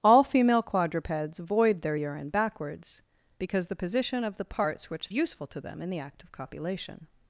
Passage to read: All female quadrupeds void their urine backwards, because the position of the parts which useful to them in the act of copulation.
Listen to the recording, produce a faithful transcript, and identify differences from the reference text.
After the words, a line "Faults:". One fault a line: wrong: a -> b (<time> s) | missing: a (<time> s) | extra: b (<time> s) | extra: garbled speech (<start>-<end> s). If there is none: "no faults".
All female quadrupeds void their urine backwards, because the position of the parts which useful to them in the act of copulation.
Faults:
no faults